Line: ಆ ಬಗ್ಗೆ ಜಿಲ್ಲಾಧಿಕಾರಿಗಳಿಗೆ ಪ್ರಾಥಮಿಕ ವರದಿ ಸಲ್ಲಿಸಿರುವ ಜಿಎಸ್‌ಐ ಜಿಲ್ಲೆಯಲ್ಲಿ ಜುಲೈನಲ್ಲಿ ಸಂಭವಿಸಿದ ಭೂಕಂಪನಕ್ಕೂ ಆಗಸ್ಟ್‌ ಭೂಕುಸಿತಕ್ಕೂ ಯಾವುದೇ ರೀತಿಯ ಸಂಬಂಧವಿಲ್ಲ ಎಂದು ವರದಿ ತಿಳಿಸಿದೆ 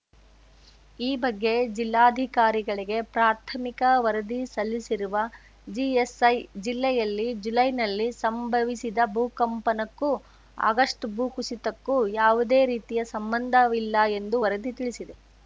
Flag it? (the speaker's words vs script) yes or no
yes